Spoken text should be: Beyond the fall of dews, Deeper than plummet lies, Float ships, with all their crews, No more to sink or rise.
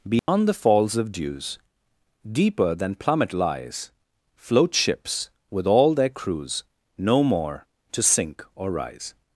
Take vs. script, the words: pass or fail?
fail